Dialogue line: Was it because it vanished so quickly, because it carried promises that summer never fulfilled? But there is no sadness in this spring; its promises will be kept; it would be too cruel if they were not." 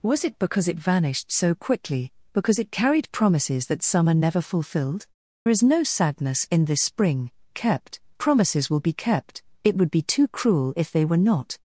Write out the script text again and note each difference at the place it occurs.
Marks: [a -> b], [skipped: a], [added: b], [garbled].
Was it because it vanished so quickly, because it carried promises that summer never fulfilled? [skipped: But there] is no sadness in this spring; [its -> kept] promises will be kept; it would be too cruel if they were not."